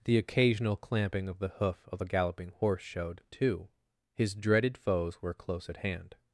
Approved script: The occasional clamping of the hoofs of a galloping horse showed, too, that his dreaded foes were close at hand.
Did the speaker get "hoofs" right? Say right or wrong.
wrong